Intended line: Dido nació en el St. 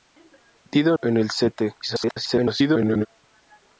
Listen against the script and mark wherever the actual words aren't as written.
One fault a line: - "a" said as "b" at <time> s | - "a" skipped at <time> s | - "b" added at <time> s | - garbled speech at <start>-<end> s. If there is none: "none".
- "nació" skipped at 1.0 s
- garbled speech at 1.8-3.1 s